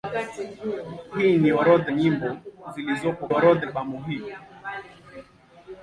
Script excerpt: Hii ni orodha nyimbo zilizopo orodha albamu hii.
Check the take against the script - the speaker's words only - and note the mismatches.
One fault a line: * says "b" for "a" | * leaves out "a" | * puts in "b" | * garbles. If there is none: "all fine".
all fine